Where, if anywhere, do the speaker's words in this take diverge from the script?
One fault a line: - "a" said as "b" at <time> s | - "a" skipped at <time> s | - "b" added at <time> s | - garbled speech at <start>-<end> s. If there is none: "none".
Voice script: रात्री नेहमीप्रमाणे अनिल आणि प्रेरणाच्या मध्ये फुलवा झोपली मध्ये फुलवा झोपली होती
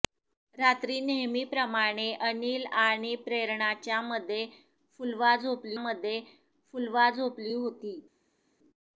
none